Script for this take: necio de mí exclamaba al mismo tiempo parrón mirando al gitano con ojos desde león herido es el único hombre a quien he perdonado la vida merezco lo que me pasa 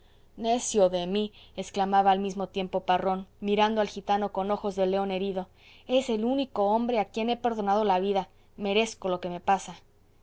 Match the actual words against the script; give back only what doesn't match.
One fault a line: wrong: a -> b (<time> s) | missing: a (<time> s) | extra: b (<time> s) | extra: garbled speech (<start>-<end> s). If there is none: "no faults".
wrong: desde -> de (4.8 s)